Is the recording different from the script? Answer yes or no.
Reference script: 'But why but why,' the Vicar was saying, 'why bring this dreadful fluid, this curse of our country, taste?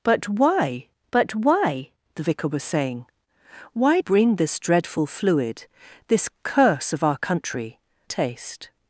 no